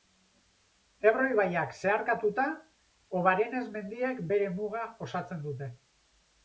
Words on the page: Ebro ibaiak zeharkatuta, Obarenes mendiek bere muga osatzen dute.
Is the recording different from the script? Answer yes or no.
no